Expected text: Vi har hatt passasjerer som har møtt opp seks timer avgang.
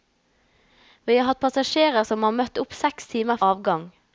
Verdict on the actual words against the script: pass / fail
pass